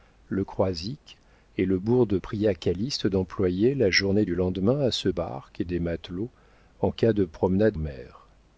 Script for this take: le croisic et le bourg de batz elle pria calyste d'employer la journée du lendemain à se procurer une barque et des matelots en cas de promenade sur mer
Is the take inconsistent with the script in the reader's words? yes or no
yes